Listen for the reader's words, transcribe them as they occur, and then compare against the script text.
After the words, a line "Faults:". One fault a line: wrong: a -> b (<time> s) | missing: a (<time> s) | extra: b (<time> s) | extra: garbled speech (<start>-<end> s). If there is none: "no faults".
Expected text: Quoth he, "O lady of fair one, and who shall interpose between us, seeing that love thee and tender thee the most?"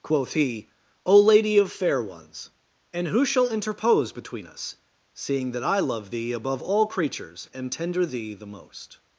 Quoth he, "O lady of fair ones, and who shall interpose between us, seeing that I love thee above all creatures and tender thee the most?"
Faults:
wrong: one -> ones (2.0 s)
extra: I (5.6 s)
extra: above all creatures (6.3 s)